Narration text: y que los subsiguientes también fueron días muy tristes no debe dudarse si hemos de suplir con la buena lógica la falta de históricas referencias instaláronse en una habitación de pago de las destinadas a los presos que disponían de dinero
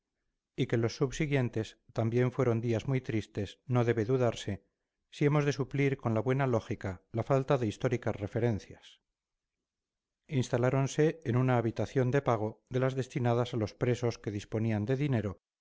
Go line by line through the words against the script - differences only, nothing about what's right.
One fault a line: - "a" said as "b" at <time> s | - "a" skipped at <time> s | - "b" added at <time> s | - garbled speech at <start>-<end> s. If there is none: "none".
none